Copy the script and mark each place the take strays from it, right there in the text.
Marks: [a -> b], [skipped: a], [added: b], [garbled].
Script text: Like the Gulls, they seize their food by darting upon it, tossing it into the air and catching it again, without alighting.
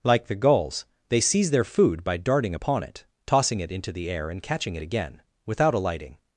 Like the Gulls, they seize their food by darting upon it, tossing it into the air and catching it again, without alighting.